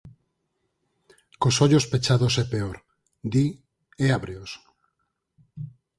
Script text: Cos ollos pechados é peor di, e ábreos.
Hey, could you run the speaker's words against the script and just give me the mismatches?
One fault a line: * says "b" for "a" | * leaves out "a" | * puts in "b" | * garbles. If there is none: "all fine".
all fine